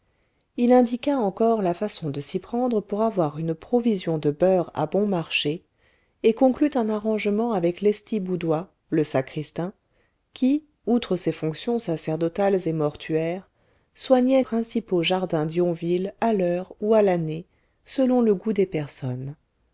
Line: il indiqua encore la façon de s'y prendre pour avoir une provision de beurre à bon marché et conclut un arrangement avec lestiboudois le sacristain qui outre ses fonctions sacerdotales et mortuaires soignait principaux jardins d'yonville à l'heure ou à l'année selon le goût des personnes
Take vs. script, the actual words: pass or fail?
pass